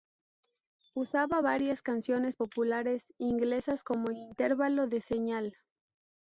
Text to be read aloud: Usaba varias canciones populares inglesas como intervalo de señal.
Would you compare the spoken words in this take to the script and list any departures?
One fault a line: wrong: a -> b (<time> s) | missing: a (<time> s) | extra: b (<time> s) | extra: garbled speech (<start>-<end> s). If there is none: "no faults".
no faults